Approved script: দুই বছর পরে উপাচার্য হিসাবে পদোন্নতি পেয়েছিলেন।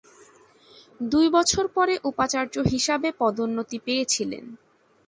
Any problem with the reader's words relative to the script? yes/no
no